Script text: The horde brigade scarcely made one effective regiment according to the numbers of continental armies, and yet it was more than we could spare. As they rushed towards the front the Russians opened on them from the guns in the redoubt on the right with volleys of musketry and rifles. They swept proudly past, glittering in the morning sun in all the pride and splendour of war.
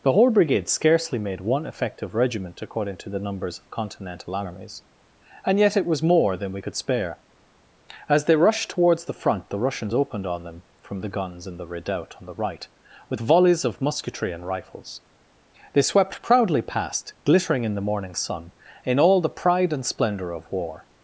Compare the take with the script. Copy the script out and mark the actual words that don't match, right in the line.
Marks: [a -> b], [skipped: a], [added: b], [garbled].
The horde brigade scarcely made one effective regiment according to the numbers of continental armies, and yet it was more than we could spare. As they rushed towards the front the Russians opened on them from the guns in the redoubt on the right with volleys of musketry and rifles. They swept proudly past, glittering in the morning sun in all the pride and splendour of war.